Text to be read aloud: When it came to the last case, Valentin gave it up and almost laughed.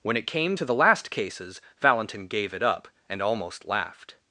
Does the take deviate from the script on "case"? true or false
true